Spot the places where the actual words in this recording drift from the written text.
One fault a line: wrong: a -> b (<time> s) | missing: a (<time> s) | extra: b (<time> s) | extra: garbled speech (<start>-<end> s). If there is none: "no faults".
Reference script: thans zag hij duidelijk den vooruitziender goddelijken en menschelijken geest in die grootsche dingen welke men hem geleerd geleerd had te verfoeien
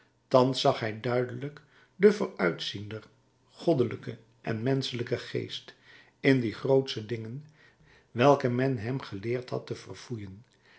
missing: geleerd (9.5 s)